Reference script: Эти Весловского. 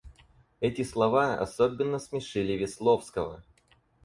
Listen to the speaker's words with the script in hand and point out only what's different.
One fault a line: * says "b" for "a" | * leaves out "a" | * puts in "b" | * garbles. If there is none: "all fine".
* puts in "слова особенно смешили"